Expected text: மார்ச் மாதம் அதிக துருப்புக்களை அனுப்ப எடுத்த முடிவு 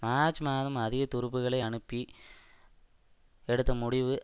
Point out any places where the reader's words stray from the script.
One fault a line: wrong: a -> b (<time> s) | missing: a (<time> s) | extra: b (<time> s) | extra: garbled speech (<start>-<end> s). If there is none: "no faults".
no faults